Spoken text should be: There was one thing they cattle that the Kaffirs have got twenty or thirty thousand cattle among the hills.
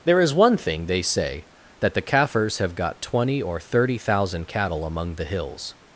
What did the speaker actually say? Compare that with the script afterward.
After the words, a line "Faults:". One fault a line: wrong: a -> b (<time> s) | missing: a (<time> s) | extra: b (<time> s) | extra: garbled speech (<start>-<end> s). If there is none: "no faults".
There is one thing they say that the Kaffirs have got twenty or thirty thousand cattle among the hills.
Faults:
wrong: was -> is (0.2 s)
wrong: cattle -> say (1.0 s)